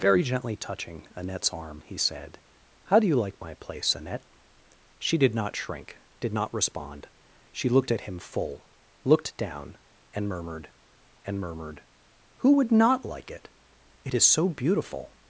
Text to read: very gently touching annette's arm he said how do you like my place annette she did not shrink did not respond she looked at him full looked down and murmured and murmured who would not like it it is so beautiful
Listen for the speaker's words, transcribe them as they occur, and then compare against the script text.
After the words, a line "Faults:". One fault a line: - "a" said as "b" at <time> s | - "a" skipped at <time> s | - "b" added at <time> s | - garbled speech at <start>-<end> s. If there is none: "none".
very gently touching annette's arm he said how do you like my place annette she did not shrink did not respond she looked at him full looked down and murmured and murmured who would not like it it is so beautiful
Faults:
none